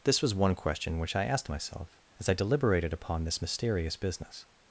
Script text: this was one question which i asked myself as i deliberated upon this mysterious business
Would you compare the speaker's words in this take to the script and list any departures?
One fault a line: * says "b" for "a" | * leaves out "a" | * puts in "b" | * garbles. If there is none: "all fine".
all fine